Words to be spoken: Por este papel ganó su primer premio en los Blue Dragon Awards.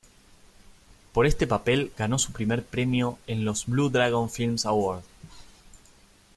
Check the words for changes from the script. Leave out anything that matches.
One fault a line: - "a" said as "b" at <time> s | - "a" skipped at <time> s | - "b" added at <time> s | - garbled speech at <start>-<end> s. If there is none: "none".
- "Film" added at 4.3 s